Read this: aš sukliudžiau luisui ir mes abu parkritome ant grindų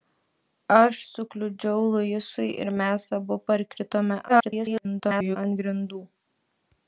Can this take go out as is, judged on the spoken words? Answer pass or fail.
fail